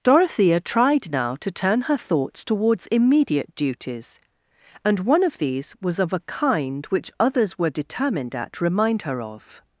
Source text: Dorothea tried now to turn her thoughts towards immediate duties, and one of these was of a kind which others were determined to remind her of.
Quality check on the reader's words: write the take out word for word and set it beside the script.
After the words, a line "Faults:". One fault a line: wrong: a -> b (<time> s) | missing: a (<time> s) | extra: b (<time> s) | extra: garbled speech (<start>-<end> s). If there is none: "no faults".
Dorothea tried now to turn her thoughts towards immediate duties, and one of these was of a kind which others were determined at remind her of.
Faults:
wrong: to -> at (8.3 s)